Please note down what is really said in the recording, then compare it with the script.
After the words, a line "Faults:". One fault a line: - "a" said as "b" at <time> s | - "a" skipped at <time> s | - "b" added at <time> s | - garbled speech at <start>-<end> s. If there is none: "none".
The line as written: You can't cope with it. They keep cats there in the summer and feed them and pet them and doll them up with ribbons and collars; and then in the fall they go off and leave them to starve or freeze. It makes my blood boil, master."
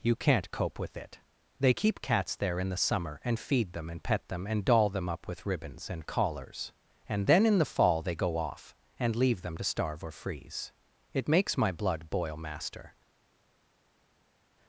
You can't cope with it. They keep cats there in the summer and feed them and pet them and doll them up with ribbons and collars; and then in the fall they go off and leave them to starve or freeze. It makes my blood boil, master."
Faults:
none